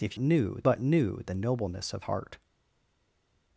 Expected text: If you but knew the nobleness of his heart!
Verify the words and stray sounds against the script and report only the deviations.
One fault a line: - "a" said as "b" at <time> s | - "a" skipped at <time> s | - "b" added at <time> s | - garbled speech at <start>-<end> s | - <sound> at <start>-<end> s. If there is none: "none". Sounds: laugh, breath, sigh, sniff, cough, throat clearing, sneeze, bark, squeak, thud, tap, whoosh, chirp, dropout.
- "you" said as "knew" at 0.2 s
- "his" skipped at 2.0 s